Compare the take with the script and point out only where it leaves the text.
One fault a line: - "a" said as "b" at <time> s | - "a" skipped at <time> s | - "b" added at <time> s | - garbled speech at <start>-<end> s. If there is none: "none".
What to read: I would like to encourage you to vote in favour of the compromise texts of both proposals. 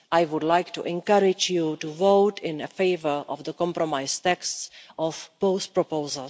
none